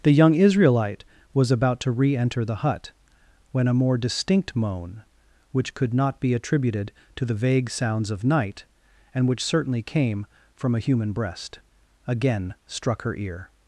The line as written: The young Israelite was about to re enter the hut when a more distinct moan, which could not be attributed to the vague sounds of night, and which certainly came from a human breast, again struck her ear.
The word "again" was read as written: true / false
true